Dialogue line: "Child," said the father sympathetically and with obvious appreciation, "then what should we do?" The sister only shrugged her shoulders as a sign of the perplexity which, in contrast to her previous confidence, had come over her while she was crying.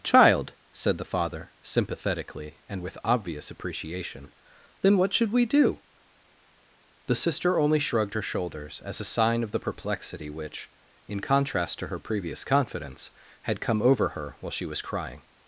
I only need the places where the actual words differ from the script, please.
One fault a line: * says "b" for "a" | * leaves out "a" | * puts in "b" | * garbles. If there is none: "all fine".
all fine